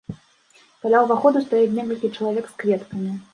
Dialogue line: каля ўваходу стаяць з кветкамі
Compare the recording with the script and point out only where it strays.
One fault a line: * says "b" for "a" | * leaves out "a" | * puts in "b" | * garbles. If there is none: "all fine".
* puts in "некалькі чалавек"